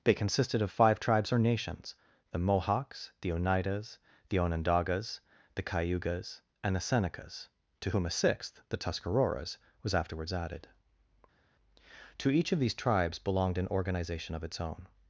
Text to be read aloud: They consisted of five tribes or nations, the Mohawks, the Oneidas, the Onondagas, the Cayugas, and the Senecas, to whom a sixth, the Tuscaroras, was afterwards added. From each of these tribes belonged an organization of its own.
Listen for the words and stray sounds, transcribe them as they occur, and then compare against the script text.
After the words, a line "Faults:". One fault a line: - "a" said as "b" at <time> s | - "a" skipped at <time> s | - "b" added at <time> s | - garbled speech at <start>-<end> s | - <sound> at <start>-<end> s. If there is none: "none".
They consisted of five tribes or nations, the Mohawks, the Oneidas, the Onondagas, the Cayugas, and the Senecas, to whom a sixth, the Tuscaroras, was afterwards added. To each of these tribes belonged an organization of its own.
Faults:
- "From" said as "To" at 12.2 s